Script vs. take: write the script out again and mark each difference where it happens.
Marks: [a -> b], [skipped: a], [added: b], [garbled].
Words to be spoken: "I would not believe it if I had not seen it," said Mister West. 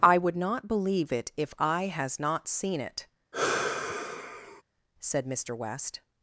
"I would not believe it if I [had -> has] not seen it," said Mister West.